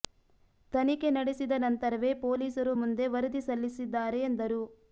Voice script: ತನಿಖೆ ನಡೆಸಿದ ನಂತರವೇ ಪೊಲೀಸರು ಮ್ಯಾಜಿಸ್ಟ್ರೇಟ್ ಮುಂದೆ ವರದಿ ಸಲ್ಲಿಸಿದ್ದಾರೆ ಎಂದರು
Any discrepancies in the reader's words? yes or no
yes